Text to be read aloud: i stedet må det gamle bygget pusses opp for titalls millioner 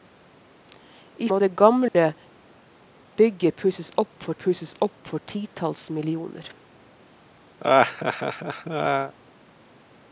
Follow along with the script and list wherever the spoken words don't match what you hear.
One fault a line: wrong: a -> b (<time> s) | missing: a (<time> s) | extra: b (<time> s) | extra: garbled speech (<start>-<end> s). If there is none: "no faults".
missing: stedet (1.3 s)
extra: pusses opp for (4.4 s)